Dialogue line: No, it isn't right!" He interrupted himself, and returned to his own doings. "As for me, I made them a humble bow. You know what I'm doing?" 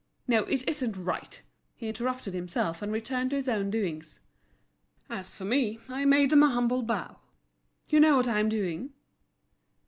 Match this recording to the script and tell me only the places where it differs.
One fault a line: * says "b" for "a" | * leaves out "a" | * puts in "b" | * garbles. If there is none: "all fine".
all fine